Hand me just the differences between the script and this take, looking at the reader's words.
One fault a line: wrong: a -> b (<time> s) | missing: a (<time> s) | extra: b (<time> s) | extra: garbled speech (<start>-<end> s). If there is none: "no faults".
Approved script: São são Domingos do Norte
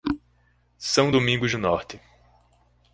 missing: são (1.1 s)